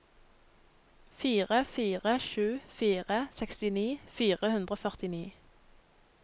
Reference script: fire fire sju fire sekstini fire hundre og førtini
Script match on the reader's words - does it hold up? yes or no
yes